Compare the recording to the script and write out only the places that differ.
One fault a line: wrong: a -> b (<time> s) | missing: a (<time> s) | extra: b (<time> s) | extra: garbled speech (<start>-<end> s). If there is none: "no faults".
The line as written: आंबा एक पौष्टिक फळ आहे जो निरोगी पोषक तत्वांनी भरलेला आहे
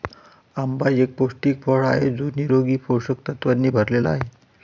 no faults